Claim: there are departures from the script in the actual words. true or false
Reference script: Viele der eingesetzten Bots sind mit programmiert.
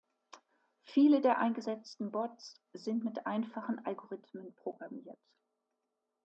true